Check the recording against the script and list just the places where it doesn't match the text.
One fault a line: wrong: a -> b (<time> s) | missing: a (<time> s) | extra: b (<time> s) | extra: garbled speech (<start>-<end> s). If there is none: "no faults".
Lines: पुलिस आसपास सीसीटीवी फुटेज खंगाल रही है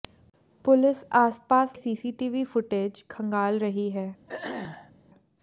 no faults